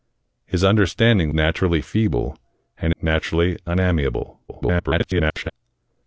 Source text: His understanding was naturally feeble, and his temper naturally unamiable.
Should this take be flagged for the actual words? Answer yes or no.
yes